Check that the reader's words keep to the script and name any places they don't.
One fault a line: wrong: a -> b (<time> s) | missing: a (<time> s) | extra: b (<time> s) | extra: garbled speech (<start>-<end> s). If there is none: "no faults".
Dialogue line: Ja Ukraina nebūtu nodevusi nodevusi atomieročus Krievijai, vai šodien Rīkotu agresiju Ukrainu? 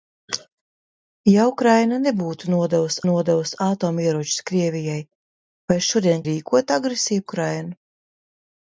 no faults